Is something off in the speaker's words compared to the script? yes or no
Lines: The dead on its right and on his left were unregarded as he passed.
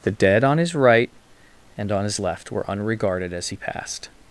yes